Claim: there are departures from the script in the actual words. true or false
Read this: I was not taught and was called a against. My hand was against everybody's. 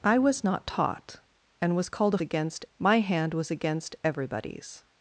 false